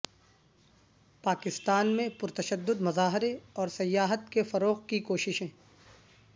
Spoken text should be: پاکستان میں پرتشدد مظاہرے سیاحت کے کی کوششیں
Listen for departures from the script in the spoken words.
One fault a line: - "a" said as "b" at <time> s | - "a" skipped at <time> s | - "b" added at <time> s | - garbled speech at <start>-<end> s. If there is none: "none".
- "اور" added at 3.5 s
- "فروغ" added at 4.4 s